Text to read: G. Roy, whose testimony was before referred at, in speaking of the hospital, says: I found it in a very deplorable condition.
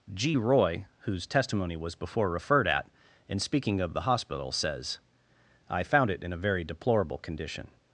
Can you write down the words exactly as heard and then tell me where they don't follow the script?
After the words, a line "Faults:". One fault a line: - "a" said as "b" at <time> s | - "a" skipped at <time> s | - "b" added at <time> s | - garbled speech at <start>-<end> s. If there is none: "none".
G. Roy, whose testimony was before referred at, in speaking of the hospital, says: I found it in a very deplorable condition.
Faults:
none